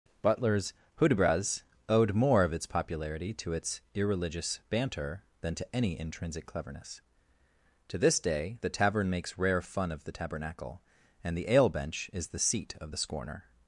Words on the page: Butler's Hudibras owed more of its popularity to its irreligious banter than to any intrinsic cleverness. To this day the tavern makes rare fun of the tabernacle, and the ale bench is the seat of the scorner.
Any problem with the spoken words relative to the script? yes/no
no